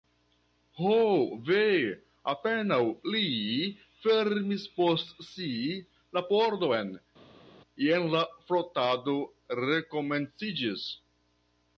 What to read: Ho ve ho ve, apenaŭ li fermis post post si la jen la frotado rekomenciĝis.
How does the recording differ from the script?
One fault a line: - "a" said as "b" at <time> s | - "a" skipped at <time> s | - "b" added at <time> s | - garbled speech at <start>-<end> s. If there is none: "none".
- "ho ve" skipped at 1.6 s
- "post" skipped at 5.2 s
- "pordon" added at 6.3 s